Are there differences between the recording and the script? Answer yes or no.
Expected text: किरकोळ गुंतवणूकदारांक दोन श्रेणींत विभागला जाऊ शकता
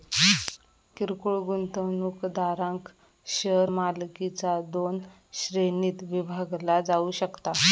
yes